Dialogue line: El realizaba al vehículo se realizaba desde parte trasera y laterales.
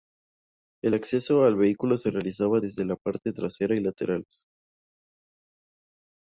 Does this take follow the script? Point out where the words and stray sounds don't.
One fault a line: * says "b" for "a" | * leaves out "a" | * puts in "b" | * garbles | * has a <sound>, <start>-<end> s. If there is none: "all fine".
* says "acceso" for "realizaba"
* puts in "la"